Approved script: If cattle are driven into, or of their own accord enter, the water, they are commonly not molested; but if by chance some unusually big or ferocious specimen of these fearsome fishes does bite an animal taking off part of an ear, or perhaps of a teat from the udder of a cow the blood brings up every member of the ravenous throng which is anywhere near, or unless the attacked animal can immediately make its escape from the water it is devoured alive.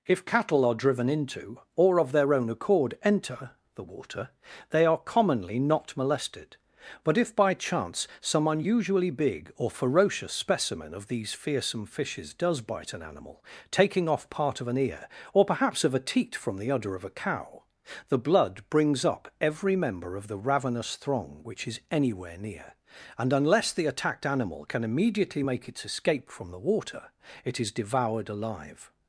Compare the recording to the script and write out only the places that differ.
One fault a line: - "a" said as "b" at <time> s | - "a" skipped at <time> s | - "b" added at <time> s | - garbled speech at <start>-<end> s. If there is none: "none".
- "or" said as "and" at 23.2 s